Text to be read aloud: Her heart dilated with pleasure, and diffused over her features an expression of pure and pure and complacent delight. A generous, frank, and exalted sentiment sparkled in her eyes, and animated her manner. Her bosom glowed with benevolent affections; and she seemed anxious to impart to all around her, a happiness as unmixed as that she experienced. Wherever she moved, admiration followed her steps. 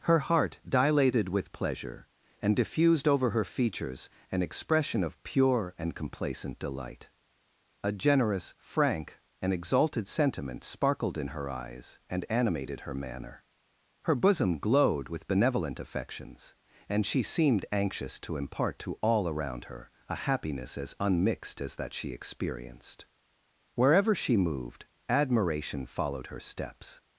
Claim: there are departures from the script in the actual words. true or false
true